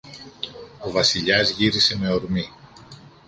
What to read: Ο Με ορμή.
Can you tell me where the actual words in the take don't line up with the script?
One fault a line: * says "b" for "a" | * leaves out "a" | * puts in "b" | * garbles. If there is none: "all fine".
* puts in "Βασιλιάς γύρισε"